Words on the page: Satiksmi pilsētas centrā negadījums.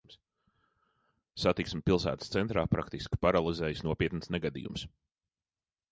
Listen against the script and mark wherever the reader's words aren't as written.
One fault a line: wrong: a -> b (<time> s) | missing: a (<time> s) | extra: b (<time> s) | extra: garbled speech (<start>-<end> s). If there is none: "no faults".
extra: praktiski paralizējis nopietns (2.8 s)